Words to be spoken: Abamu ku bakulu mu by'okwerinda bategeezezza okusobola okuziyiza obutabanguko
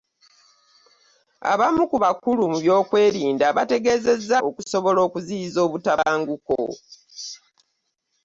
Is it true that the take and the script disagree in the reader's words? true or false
false